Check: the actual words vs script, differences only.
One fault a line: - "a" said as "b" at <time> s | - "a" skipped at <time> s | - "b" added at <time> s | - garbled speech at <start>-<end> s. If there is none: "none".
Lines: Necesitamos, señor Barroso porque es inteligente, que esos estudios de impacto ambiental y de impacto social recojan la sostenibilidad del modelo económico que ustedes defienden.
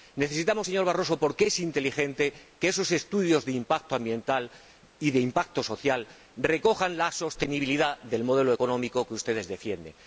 none